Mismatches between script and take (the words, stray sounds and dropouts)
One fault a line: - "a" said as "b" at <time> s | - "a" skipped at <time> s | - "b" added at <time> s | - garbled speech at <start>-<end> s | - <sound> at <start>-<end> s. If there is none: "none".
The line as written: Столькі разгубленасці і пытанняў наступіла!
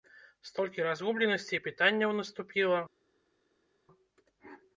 none